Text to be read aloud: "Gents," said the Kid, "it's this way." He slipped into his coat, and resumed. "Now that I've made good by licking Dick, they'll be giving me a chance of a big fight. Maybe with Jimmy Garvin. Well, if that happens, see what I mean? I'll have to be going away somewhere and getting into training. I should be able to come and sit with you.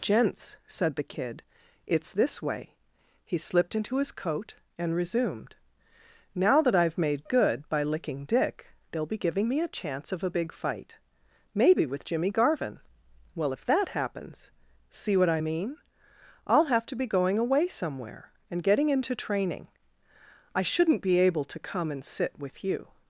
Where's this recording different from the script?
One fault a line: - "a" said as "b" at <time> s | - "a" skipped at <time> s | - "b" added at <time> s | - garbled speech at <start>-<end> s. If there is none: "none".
- "should" said as "shouldn't" at 20.6 s